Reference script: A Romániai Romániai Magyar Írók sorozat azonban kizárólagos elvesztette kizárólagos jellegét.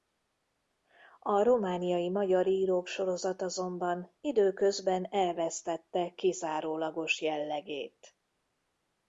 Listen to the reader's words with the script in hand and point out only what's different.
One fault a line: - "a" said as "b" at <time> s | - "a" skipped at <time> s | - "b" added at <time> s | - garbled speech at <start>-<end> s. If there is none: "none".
- "Romániai" skipped at 2.1 s
- "kizárólagos" said as "időközben" at 4.2 s